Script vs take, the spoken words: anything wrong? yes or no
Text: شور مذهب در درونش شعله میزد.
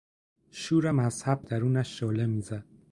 yes